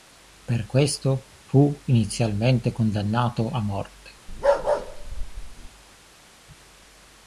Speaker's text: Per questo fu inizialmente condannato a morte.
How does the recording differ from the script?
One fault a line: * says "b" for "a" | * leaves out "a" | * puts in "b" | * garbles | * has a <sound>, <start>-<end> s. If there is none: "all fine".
* has a bark, 4.3-5.7 s